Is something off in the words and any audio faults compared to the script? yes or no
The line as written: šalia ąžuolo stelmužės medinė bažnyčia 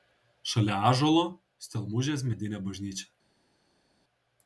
no